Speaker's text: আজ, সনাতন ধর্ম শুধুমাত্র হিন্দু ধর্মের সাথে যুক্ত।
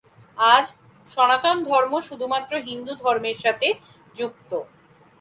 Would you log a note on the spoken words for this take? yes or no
no